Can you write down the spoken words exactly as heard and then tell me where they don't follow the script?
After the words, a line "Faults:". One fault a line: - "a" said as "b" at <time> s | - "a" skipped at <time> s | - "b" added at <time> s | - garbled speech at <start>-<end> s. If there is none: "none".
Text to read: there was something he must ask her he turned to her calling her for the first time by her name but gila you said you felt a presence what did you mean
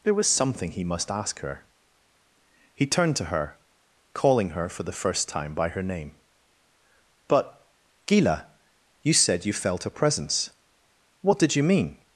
there was something he must ask her he turned to her calling her for the first time by her name but gila you said you felt a presence what did you mean
Faults:
none